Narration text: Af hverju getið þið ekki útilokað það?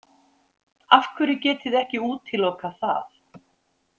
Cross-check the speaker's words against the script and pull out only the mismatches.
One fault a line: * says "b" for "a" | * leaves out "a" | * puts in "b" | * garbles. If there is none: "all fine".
all fine